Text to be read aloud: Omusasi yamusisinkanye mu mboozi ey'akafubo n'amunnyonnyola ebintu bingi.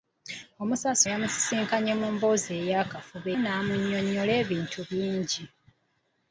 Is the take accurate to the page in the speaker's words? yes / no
yes